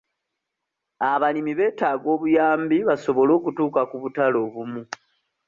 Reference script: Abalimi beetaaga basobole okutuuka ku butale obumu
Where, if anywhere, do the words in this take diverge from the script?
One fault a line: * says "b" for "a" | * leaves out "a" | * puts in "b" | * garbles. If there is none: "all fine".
* puts in "obuyambi"